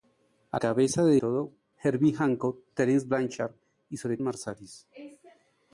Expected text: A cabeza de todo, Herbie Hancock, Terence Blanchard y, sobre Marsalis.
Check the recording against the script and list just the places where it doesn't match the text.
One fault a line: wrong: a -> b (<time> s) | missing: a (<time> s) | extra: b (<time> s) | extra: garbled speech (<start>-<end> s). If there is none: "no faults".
no faults